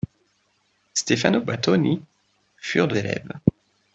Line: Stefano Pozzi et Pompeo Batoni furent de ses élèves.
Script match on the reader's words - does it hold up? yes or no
no